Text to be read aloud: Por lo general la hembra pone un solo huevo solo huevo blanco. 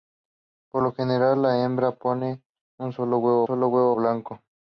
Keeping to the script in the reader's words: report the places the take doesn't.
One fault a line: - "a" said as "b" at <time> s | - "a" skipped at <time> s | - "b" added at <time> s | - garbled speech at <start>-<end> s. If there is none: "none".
none